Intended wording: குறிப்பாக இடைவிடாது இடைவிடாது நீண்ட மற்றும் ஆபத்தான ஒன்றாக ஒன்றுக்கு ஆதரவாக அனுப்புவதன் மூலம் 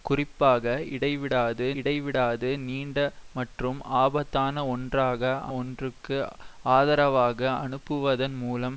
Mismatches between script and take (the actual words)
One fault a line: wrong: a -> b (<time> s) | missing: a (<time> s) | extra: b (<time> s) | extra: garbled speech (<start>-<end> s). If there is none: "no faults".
no faults